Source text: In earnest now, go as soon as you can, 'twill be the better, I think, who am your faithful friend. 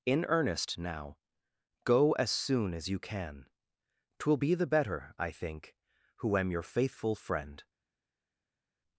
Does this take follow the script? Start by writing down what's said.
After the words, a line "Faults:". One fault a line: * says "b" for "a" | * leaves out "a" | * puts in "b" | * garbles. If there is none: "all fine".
In earnest now, go as soon as you can, 'twill be the better, I think, who am your faithful friend.
Faults:
all fine